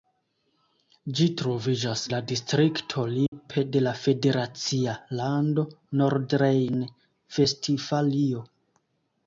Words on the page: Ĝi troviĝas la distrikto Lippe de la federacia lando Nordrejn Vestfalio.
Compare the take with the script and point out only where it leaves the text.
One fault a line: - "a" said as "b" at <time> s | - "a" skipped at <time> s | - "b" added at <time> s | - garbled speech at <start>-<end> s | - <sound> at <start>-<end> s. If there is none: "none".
- dropout at 3.3-3.3 s